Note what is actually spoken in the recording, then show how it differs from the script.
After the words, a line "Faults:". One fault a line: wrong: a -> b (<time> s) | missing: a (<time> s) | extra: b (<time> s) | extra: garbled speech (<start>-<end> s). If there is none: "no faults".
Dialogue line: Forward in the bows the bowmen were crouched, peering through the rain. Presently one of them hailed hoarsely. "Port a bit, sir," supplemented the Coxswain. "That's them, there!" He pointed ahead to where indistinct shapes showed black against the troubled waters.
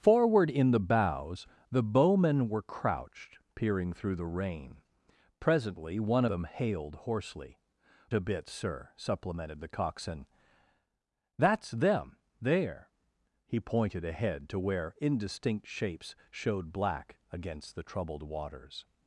Forward in the bows the bowmen were crouched, peering through the rain. Presently one them hailed hoarsely. "A bit, sir," supplemented the Coxswain. "That's them, there!" He pointed ahead to where indistinct shapes showed black against the troubled waters.
Faults:
missing: of (6.2 s)
missing: Port (7.6 s)